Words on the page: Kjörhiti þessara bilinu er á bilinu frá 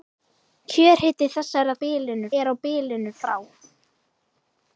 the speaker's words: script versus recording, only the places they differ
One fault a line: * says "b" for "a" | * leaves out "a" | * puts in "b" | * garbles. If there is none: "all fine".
all fine